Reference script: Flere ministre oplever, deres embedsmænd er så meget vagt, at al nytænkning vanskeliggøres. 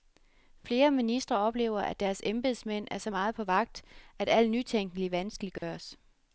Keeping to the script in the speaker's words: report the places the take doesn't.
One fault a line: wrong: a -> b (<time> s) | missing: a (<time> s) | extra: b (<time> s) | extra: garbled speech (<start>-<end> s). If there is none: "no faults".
extra: at (1.8 s)
extra: på (3.3 s)